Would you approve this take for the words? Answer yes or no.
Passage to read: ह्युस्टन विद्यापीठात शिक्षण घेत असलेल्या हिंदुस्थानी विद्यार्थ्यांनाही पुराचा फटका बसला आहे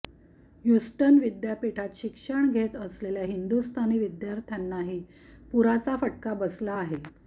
yes